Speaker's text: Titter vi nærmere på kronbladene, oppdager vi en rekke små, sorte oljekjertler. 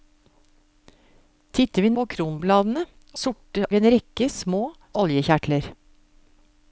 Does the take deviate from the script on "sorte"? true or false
true